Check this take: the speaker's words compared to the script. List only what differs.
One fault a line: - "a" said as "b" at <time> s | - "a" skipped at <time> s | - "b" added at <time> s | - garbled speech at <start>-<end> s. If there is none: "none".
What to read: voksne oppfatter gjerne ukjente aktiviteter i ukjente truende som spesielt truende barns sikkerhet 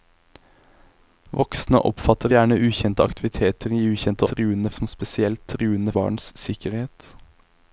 none